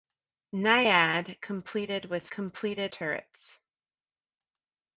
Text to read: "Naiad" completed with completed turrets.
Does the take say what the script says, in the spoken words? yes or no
yes